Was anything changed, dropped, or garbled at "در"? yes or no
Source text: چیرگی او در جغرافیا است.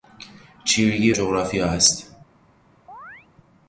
yes